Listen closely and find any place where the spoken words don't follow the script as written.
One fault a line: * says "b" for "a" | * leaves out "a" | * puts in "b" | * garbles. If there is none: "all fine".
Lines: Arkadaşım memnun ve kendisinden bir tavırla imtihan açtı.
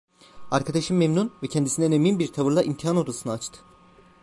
* puts in "emin"
* puts in "odasını"